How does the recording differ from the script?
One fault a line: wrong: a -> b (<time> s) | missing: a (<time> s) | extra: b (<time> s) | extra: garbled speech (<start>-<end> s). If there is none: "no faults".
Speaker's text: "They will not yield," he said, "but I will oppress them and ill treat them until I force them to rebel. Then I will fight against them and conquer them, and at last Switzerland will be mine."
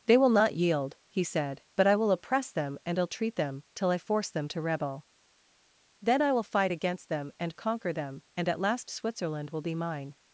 wrong: until -> till (3.8 s)